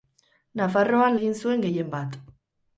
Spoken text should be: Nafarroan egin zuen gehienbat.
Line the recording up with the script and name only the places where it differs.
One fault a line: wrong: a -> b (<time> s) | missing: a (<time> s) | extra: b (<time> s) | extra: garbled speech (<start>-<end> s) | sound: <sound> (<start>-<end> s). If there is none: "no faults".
no faults